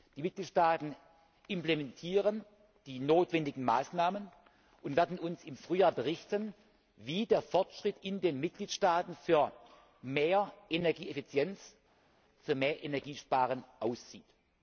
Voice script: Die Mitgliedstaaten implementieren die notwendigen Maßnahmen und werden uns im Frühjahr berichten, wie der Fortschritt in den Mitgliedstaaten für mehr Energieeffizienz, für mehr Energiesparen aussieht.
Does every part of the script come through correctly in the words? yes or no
yes